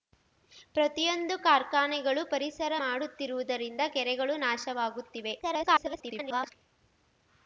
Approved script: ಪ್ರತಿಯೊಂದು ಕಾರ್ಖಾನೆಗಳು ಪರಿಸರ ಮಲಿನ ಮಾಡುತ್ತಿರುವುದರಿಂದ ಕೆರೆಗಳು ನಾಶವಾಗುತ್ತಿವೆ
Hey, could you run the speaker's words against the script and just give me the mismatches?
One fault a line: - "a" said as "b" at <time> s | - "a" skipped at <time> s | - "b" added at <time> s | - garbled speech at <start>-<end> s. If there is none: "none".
- "ಮಲಿನ" skipped at 2.7 s
- garbled speech at 5.4-6.5 s